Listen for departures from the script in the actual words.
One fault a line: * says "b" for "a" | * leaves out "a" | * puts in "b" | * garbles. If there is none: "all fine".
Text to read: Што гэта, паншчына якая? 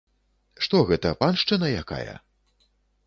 all fine